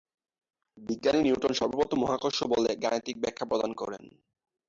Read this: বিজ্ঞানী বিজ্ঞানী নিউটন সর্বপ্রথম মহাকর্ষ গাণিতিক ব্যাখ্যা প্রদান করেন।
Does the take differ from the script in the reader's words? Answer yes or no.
yes